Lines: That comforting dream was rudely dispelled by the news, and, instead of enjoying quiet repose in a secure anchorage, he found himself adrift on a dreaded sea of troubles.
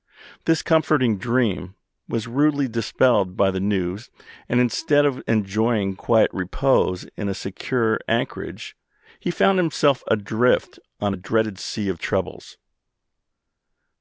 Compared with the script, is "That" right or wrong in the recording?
wrong